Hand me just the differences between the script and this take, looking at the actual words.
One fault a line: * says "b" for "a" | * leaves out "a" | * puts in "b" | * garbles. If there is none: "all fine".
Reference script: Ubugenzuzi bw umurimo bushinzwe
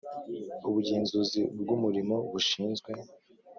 all fine